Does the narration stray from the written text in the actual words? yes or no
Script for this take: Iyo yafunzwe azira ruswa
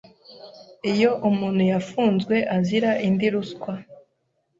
yes